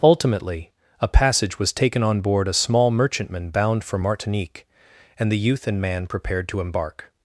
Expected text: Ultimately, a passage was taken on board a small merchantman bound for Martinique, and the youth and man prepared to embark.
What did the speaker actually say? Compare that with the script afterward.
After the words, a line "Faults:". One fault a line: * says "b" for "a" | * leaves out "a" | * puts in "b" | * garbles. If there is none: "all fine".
Ultimately, a passage was taken on board a small merchantman bound for Martinique, and the youth and man prepared to embark.
Faults:
all fine